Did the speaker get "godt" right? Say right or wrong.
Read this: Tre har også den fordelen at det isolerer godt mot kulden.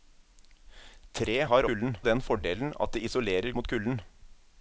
wrong